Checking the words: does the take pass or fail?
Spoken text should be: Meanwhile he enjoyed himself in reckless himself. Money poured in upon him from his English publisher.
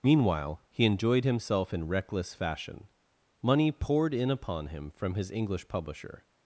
fail